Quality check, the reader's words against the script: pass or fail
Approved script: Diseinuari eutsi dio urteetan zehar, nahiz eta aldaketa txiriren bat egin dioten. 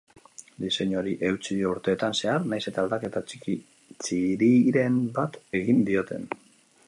pass